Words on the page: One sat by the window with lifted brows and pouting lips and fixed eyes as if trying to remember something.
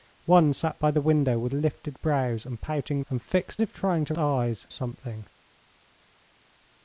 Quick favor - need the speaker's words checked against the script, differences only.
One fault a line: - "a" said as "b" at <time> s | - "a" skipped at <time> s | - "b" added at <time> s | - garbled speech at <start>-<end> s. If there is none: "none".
- "lips" skipped at 3.0 s
- "eyes as" skipped at 3.6 s
- "remember" said as "eyes" at 4.2 s